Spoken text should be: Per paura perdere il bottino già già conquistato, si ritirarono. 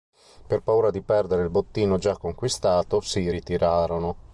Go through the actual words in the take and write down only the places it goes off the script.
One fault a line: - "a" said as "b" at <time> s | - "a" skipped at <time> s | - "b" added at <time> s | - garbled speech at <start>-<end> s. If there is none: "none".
- "di" added at 0.9 s
- "già" skipped at 2.2 s